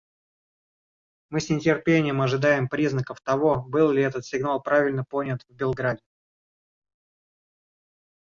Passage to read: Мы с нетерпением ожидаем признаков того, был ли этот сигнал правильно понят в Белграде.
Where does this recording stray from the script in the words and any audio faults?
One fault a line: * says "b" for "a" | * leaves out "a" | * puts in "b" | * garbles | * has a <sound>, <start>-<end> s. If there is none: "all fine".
all fine